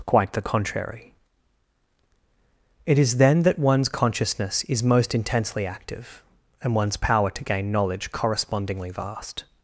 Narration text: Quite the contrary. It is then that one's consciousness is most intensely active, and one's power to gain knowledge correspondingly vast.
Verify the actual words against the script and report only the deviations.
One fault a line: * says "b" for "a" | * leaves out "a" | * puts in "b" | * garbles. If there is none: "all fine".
all fine